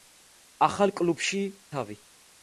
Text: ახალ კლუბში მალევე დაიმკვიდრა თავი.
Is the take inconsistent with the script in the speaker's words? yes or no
yes